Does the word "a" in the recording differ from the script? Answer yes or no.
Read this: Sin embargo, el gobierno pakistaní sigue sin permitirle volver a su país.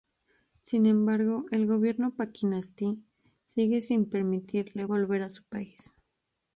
no